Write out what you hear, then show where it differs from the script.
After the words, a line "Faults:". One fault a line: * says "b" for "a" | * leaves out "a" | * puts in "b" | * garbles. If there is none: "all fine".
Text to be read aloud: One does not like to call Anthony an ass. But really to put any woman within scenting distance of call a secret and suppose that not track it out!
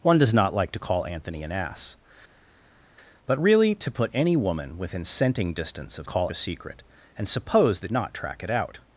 One does not like to call Anthony an ass. But really to put any woman within scenting distance of call a secret and suppose that not track it out!
Faults:
all fine